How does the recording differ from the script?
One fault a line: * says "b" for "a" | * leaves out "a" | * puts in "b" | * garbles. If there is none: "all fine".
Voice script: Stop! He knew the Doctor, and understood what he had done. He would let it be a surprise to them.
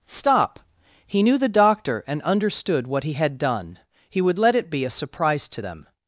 all fine